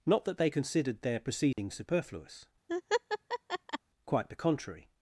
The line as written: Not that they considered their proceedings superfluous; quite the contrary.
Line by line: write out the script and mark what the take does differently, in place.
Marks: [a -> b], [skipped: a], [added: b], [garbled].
Not that they considered their proceedings superfluous; quite the contrary.